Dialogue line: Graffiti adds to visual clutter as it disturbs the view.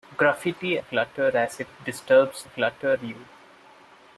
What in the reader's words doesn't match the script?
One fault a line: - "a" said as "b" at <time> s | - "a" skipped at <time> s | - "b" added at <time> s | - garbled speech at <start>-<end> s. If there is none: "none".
- "adds to visual" skipped at 0.8 s
- "the" said as "clutter" at 2.4 s